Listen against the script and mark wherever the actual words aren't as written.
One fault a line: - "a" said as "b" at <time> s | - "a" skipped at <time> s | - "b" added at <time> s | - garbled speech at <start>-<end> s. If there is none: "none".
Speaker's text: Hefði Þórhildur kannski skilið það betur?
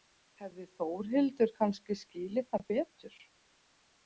none